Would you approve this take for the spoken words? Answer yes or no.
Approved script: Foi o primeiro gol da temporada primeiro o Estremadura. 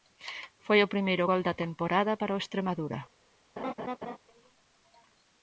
no